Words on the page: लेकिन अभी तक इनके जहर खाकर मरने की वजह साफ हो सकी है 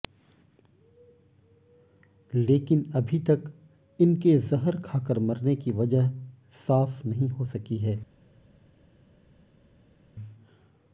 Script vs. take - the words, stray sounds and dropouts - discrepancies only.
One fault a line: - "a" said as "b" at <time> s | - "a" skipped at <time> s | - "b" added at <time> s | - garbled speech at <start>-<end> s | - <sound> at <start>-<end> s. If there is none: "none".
- "नहीं" added at 7.0 s